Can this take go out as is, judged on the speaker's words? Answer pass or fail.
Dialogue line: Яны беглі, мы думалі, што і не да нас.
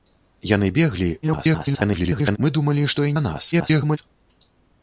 fail